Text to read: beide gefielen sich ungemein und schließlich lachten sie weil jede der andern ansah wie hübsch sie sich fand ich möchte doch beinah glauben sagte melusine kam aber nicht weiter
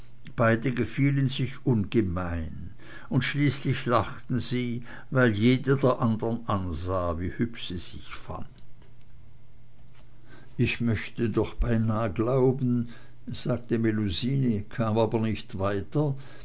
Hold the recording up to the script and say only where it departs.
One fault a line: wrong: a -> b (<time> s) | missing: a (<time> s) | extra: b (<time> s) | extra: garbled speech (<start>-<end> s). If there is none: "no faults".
no faults